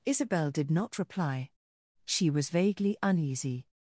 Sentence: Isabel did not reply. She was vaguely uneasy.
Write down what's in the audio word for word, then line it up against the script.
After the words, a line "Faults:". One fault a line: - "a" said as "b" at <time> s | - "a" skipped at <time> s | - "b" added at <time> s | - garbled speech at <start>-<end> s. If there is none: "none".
Isabel did not reply. She was vaguely uneasy.
Faults:
none